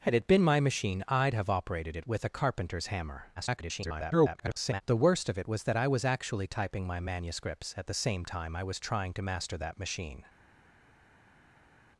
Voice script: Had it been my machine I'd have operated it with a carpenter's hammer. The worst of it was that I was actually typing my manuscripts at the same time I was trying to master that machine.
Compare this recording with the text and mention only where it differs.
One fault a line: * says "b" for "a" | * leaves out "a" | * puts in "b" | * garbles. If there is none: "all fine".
* garbles